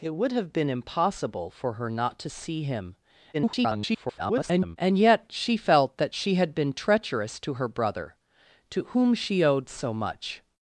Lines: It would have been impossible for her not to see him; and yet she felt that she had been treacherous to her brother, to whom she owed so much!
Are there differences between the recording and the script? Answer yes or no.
yes